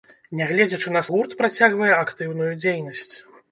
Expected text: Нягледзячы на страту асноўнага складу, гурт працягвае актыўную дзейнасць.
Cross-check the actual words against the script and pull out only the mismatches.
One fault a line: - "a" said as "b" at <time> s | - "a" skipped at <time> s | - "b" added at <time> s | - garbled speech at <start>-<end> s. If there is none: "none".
- "страту асноўнага складу" skipped at 1.0 s